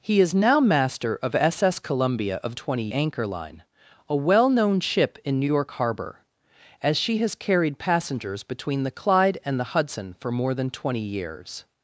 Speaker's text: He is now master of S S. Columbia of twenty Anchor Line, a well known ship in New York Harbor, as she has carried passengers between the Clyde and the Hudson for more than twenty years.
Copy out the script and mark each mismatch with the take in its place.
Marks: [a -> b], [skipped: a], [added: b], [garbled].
He is now master of S S. Columbia of twenty Anchor Line, a well known ship in New York Harbor, as she has carried passengers between the Clyde and the Hudson for more than twenty years.